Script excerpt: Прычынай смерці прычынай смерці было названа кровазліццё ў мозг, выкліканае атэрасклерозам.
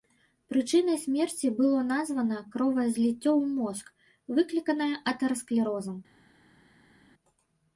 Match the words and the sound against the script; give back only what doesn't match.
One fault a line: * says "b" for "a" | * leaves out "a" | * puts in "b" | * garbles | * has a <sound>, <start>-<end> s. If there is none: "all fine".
* leaves out "прычынай смерці"